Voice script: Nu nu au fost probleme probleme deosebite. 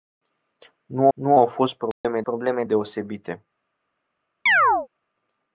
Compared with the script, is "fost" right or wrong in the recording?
right